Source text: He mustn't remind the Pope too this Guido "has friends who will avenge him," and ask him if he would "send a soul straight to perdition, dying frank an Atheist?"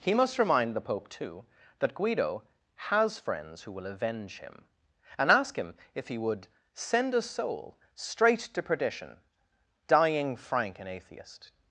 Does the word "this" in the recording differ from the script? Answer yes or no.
yes